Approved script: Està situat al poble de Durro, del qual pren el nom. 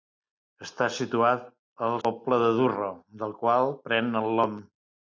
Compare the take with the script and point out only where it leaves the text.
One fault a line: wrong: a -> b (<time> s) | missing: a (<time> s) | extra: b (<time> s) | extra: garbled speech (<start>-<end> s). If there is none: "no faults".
no faults